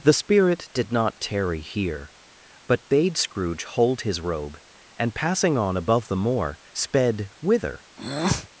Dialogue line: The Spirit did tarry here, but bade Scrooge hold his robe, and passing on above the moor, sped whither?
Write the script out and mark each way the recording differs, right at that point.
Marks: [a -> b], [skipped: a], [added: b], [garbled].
The Spirit did [added: not] tarry here, but bade Scrooge hold his robe, and passing on above the moor, sped whither?